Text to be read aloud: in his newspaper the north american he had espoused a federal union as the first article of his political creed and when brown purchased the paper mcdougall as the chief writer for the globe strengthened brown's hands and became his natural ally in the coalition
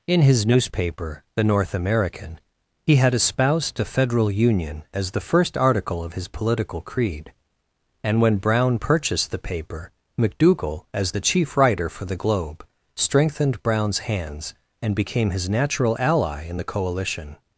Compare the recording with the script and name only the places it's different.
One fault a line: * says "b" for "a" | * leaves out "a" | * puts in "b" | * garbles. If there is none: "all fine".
all fine